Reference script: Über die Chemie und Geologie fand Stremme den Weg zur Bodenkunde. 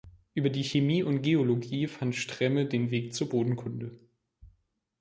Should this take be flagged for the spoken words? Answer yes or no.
no